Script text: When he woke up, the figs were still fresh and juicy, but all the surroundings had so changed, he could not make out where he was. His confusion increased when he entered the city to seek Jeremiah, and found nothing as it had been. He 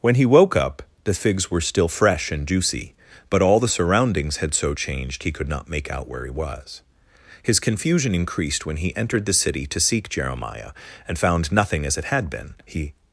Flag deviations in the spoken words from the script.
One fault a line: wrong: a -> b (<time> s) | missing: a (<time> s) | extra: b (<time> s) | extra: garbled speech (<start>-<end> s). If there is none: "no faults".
no faults